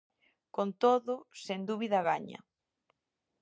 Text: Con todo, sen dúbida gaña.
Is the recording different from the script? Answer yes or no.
no